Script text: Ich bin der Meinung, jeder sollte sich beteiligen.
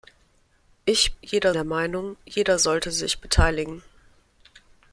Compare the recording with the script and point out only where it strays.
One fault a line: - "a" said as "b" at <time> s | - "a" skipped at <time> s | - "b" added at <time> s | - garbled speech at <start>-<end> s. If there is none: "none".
- "bin" said as "jeder" at 1.2 s